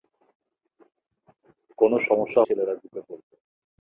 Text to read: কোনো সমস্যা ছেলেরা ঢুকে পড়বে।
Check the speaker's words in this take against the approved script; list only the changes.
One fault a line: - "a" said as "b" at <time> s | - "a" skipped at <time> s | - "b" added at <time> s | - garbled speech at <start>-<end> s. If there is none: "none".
none